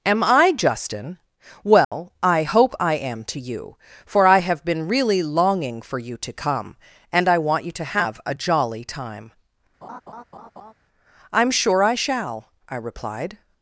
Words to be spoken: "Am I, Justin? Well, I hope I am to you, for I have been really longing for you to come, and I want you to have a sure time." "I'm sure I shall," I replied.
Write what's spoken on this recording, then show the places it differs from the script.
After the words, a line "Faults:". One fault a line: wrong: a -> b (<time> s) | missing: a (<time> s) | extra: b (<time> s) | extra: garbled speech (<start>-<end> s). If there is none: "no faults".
"Am I, Justin? Well, I hope I am to you, for I have been really longing for you to come, and I want you to have a jolly time." "I'm sure I shall," I replied.
Faults:
wrong: sure -> jolly (8.3 s)